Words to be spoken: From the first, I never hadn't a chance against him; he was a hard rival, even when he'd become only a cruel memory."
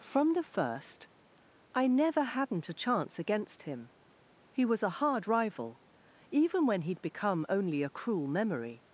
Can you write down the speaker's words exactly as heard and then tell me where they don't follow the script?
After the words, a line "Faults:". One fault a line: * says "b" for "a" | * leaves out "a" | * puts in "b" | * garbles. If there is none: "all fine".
From the first, I never hadn't a chance against him; he was a hard rival, even when he'd become only a cruel memory."
Faults:
all fine